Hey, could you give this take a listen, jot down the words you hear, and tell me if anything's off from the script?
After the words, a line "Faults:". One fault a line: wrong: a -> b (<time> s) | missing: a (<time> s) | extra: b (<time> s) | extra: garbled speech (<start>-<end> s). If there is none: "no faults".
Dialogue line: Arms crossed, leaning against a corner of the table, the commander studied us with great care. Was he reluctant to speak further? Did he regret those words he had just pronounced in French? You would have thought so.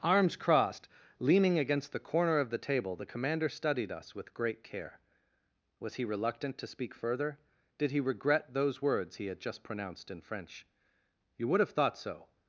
Arms crossed, leaning against the corner of the table, the commander studied us with great care. Was he reluctant to speak further? Did he regret those words he had just pronounced in French? You would have thought so.
Faults:
wrong: a -> the (1.9 s)